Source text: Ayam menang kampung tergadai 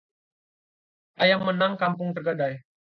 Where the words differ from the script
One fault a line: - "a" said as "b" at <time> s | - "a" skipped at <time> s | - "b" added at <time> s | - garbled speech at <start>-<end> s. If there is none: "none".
none